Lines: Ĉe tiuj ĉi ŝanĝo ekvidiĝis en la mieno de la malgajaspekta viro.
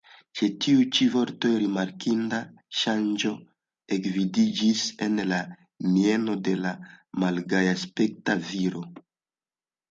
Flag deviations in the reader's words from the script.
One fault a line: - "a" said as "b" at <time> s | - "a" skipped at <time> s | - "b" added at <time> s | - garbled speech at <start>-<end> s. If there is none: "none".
- "vortoj rimarkinda" added at 1.1 s